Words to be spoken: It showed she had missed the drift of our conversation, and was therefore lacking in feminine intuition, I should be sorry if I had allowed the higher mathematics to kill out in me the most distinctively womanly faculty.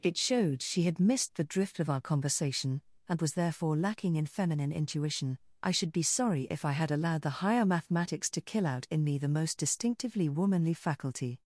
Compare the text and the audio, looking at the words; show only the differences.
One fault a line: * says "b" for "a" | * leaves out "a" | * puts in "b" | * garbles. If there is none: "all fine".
all fine